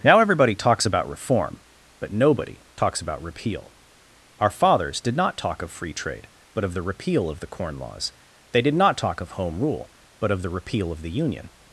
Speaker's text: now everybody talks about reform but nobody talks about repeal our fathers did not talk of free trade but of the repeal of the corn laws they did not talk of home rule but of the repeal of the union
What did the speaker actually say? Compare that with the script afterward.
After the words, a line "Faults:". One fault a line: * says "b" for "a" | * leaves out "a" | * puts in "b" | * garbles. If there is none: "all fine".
now everybody talks about reform but nobody talks about repeal our fathers did not talk of free trade but of the repeal of the corn laws they did not talk of home rule but of the repeal of the union
Faults:
all fine